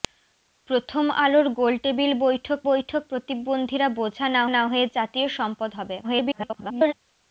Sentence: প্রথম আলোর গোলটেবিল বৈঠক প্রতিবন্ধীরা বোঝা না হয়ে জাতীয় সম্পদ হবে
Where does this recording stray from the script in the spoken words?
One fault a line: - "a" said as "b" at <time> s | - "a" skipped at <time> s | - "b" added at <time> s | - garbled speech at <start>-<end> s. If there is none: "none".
- "বৈঠক" added at 2.7 s
- "না" added at 4.5 s
- garbled speech at 6.0-6.9 s